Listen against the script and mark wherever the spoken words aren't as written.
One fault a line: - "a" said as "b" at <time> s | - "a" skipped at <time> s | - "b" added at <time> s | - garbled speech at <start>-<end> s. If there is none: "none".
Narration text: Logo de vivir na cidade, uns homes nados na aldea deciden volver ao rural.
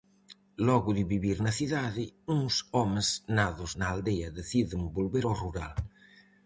none